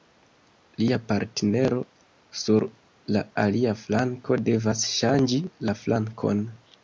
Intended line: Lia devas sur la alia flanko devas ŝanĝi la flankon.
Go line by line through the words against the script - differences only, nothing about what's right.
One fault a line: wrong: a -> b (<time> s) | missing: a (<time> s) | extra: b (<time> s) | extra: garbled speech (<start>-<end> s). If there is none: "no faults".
wrong: devas -> partnero (1.1 s)